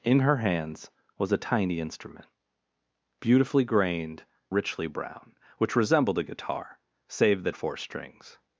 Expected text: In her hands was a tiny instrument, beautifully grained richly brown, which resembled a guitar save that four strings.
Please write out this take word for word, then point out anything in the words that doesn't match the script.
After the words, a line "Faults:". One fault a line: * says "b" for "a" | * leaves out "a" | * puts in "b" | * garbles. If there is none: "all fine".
In her hands was a tiny instrument, beautifully grained richly brown, which resembled a guitar save that four strings.
Faults:
all fine